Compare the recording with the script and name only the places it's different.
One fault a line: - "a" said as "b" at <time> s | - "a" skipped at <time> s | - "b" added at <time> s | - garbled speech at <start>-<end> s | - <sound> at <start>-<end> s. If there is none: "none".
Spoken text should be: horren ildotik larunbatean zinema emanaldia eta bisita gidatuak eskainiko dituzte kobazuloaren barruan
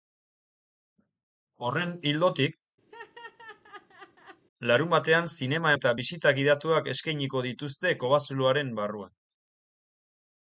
- laugh at 2.9-4.4 s
- "emanaldia" skipped at 5.8 s